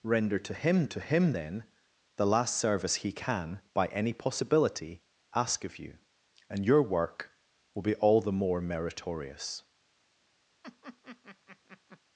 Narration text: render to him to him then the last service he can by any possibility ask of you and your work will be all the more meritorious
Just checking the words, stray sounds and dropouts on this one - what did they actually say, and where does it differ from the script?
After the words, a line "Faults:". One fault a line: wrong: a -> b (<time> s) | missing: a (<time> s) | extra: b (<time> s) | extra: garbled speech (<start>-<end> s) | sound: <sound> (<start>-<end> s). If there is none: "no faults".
render to him to him then the last service he can by any possibility ask of you and your work will be all the more meritorious
Faults:
sound: laugh (10.6-12.0 s)